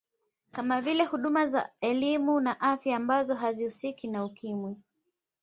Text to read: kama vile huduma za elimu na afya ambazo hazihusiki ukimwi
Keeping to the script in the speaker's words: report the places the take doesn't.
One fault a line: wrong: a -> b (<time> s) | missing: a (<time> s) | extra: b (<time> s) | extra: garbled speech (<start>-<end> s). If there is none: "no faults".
extra: na (4.1 s)